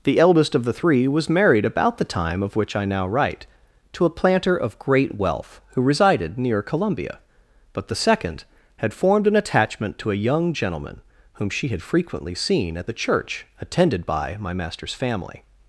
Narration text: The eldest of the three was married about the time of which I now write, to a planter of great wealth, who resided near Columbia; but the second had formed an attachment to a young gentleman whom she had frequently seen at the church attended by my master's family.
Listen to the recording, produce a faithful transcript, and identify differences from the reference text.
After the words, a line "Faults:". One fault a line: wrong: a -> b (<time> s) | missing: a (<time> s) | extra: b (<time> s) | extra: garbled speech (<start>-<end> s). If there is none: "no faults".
The eldest of the three was married about the time of which I now write, to a planter of great wealth, who resided near Columbia; but the second had formed an attachment to a young gentleman whom she had frequently seen at the church attended by my master's family.
Faults:
no faults